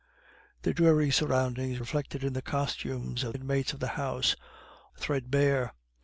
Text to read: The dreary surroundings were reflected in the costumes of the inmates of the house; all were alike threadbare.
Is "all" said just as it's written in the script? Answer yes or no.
no